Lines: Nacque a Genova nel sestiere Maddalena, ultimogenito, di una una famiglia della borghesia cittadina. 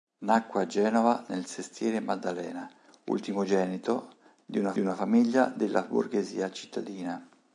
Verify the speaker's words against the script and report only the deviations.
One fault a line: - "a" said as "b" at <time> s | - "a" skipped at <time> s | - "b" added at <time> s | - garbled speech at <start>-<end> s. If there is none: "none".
none